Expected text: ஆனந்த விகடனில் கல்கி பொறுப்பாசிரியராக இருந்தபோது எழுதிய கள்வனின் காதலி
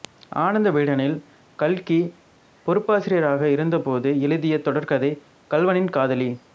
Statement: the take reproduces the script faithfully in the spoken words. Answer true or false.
false